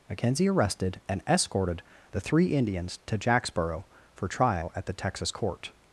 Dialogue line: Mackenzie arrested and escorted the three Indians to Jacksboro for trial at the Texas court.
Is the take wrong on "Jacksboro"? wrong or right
right